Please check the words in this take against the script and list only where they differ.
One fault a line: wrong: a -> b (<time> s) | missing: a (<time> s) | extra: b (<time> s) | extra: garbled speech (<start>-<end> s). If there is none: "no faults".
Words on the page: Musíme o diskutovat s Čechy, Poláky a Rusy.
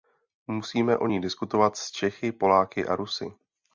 extra: ní (1.1 s)